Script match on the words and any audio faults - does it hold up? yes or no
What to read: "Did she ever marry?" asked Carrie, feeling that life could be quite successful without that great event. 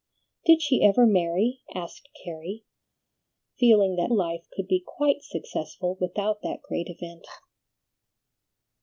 yes